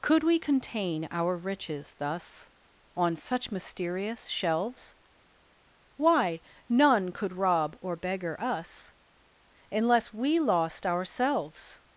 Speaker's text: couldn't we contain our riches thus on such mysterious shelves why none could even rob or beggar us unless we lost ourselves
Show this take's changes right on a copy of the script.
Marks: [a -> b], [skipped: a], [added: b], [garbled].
[couldn't -> could] we contain our riches thus on such mysterious shelves why none could [skipped: even] rob or beggar us unless we lost ourselves